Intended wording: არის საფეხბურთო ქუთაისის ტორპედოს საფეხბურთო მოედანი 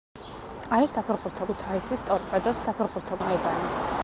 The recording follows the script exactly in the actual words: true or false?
true